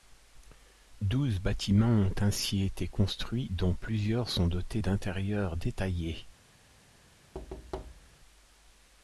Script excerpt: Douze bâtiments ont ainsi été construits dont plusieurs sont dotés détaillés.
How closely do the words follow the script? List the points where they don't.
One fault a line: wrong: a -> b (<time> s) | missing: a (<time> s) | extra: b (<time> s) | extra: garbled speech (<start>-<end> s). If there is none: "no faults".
extra: d'intérieurs (4.8 s)